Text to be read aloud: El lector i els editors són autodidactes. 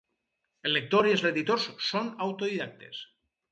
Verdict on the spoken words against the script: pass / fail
pass